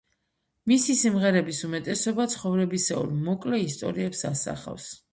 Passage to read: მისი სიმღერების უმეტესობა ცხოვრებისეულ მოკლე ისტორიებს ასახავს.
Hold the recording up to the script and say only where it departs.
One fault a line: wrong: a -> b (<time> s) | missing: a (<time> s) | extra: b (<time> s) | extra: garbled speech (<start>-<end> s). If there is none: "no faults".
no faults